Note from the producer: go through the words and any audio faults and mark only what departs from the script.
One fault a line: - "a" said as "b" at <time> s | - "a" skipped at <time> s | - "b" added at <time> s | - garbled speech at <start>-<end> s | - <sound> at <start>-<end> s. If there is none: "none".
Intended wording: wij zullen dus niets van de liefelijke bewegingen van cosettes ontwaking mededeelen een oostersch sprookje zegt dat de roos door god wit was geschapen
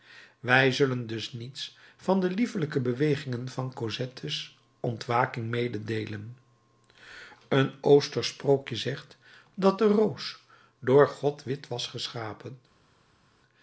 none